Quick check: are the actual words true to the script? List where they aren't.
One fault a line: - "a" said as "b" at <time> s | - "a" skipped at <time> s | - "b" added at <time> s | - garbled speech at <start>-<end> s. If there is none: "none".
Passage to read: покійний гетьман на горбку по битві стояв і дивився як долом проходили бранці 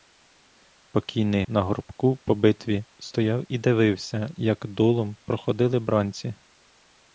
- "гетьман" skipped at 1.4 s